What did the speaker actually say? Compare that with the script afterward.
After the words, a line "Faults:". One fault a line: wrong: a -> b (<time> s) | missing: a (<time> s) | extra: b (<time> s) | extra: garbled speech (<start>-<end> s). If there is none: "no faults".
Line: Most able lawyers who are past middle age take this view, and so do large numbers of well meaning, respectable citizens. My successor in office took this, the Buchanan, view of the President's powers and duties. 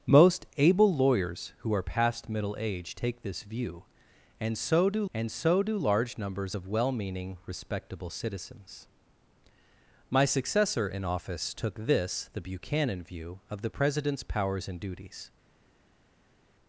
Most able lawyers who are past middle age take this view, and so do and so do large numbers of well meaning, respectable citizens. My successor in office took this, the Buchanan, view of the President's powers and duties.
Faults:
extra: and so do (5.1 s)